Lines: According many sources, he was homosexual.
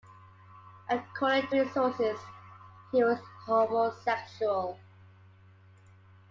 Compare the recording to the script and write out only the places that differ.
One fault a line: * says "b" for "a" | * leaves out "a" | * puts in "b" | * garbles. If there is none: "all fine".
all fine